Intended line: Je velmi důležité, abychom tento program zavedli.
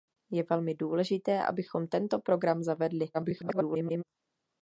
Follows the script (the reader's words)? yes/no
no